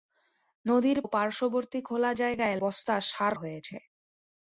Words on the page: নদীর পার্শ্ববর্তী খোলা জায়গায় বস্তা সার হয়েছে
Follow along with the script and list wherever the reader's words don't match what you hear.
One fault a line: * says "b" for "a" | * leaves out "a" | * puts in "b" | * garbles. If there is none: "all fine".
all fine